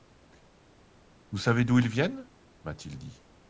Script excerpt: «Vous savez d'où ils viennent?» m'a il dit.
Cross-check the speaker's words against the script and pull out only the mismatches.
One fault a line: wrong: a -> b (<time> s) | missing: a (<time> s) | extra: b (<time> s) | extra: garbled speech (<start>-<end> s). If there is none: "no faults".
extra: t (2.7 s)